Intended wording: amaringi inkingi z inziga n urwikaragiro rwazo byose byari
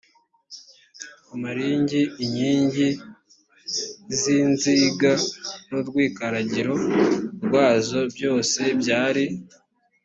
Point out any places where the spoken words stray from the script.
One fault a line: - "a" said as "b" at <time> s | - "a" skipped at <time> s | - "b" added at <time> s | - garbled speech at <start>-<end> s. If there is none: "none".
none